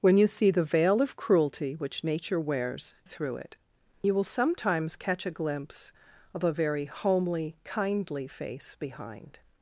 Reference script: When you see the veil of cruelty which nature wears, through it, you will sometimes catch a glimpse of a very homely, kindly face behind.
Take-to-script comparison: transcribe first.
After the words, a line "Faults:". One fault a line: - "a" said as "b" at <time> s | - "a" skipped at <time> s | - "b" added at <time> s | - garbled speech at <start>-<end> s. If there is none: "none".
When you see the veil of cruelty which nature wears, through it, you will sometimes catch a glimpse of a very homely, kindly face behind.
Faults:
none